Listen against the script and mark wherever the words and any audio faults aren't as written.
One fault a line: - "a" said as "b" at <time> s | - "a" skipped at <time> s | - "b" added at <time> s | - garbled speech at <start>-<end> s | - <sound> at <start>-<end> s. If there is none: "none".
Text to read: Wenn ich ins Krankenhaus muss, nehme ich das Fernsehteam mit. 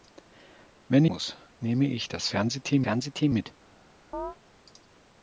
- "ich ins Krankenhaus" skipped at 1.1 s
- "Fernsehteam" added at 2.8 s
- chirp at 4.1-4.4 s